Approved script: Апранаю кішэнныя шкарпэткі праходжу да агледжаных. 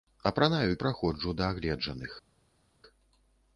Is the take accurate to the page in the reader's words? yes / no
no